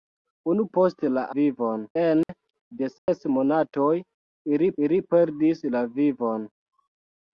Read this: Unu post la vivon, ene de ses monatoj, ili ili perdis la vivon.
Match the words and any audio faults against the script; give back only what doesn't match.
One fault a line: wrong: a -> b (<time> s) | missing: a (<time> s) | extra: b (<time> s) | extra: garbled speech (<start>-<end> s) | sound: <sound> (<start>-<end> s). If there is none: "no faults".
sound: dropout (2.2-2.3 s)
sound: dropout (3.0-3.1 s)